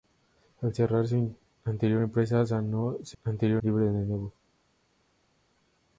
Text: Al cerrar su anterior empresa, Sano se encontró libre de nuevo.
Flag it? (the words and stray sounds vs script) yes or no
yes